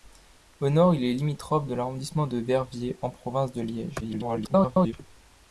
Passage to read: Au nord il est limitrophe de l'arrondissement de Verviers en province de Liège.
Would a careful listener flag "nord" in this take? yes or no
no